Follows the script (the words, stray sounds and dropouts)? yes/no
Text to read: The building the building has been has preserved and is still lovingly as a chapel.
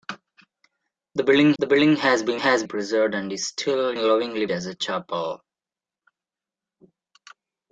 yes